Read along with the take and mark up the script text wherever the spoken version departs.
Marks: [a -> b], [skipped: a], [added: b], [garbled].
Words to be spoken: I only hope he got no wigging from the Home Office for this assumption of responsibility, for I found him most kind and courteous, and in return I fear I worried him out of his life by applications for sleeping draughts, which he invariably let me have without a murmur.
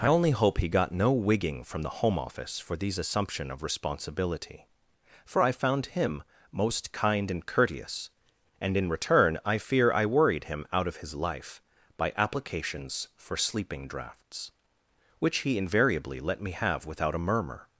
I only hope he got no wigging from the Home Office for [this -> these] assumption of responsibility, for I found him most kind and courteous, and in return I fear I worried him out of his life by applications for sleeping draughts, which he invariably let me have without a murmur.